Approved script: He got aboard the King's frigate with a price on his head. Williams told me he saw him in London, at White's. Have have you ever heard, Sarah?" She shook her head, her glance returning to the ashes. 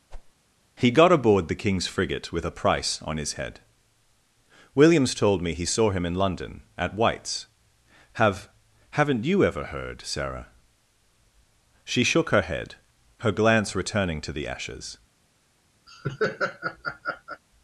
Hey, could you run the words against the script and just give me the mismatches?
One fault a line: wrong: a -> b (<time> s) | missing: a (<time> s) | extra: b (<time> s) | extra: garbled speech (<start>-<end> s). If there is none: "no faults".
wrong: have -> haven't (8.9 s)